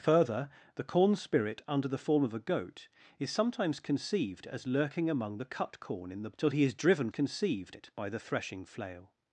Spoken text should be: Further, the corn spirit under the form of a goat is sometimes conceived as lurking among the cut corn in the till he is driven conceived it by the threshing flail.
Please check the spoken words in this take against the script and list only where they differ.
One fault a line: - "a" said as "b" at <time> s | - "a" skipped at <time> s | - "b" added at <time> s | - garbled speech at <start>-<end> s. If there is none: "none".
none